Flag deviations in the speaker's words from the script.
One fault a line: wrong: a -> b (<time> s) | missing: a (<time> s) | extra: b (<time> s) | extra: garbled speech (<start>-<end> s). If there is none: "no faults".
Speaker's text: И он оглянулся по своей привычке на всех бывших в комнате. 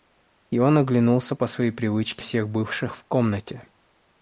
missing: на (2.2 s)